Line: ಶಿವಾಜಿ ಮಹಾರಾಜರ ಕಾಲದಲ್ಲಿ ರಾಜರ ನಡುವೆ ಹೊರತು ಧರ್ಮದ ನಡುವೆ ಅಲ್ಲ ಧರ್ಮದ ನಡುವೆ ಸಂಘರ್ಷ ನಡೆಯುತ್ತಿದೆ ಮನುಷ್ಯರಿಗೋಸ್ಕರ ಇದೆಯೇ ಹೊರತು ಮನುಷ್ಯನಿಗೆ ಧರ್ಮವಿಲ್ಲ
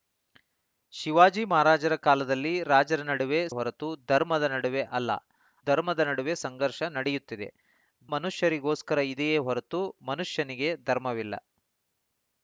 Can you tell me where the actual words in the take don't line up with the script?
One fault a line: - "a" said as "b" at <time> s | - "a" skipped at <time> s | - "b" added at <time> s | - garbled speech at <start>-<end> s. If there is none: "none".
none